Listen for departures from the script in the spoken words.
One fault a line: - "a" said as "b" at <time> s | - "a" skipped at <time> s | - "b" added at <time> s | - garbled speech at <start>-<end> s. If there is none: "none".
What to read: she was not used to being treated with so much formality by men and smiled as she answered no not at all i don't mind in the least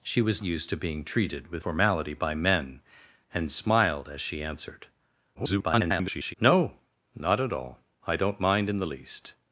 - "not" skipped at 0.4 s
- "so much" skipped at 1.6 s
- garbled speech at 5.3-6.3 s